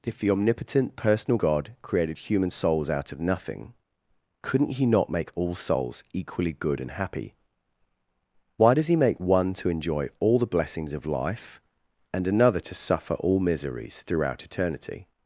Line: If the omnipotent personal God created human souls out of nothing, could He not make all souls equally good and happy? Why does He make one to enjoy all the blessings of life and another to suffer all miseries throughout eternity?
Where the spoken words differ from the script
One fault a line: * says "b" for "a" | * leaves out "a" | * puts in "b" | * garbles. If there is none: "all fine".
* says "couldn't" for "could"